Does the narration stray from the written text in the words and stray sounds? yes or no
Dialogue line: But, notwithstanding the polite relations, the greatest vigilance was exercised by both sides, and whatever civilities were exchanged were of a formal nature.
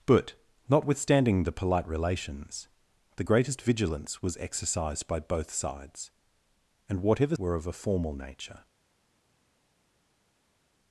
yes